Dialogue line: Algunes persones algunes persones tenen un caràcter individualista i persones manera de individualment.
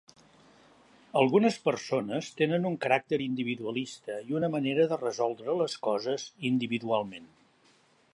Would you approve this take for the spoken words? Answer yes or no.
no